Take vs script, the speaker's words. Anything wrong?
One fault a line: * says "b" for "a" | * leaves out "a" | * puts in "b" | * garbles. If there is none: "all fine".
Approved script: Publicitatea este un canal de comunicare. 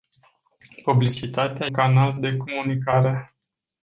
* leaves out "este un"